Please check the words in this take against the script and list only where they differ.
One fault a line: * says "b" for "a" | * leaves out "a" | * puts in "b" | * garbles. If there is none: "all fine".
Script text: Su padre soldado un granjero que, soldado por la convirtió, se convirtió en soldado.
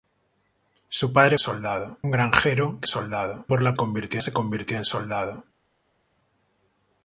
all fine